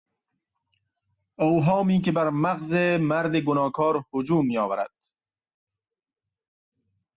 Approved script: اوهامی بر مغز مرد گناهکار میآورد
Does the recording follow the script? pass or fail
fail